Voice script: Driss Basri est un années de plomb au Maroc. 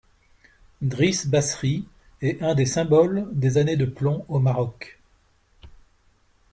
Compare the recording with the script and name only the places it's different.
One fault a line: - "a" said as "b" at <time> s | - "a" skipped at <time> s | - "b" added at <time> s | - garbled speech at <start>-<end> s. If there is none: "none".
- "des symboles des" added at 2.5 s